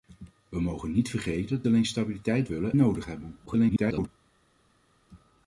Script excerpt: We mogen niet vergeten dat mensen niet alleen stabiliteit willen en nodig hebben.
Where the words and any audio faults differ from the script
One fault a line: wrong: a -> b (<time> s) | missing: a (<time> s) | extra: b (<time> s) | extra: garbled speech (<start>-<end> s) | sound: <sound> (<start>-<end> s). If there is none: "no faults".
missing: dat mensen niet (1.6 s)
missing: en (2.8 s)
extra: garbled speech (3.5-4.1 s)